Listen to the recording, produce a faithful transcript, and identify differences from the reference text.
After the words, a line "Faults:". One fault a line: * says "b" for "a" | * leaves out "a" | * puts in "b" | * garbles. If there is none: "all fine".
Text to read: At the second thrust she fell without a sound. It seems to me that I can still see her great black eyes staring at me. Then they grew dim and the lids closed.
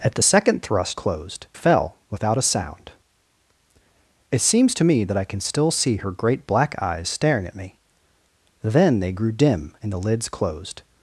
At the second thrust closed fell without a sound. It seems to me that I can still see her great black eyes staring at me. Then they grew dim and the lids closed.
Faults:
* says "closed" for "she"